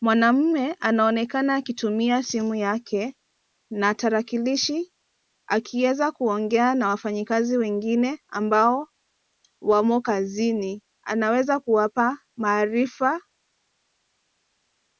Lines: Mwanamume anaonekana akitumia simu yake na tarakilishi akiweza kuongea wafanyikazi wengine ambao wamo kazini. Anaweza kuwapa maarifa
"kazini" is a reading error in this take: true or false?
false